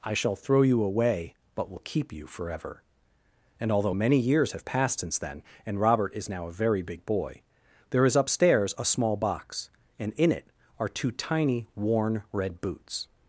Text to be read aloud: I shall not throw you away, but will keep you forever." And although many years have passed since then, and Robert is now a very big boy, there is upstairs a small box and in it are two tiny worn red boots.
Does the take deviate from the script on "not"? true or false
true